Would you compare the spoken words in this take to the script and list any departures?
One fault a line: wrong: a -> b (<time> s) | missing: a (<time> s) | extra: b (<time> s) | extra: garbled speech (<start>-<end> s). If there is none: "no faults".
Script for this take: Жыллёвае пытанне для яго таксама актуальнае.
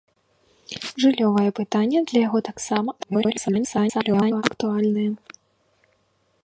extra: garbled speech (3.0-4.4 s)